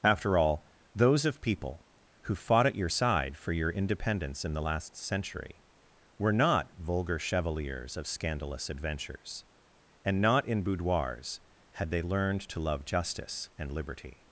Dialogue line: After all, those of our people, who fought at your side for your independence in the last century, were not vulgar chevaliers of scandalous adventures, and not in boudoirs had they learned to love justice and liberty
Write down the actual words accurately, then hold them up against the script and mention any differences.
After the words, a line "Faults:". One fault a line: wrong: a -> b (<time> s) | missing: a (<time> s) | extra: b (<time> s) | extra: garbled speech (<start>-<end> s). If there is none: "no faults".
After all, those of people, who fought at your side for your independence in the last century, were not vulgar chevaliers of scandalous adventures, and not in boudoirs had they learned to love justice and liberty
Faults:
missing: our (1.4 s)